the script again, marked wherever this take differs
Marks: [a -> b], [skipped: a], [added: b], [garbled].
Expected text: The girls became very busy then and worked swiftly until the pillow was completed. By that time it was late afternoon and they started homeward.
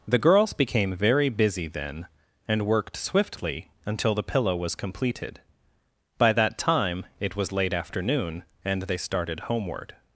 The girls became very busy then and worked swiftly until the pillow was completed. By that time it was late afternoon and they started homeward.